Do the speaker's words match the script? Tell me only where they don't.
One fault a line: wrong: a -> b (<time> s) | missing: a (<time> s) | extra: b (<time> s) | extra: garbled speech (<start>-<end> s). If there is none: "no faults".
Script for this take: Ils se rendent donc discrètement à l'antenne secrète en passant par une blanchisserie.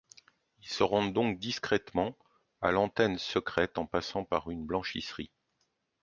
no faults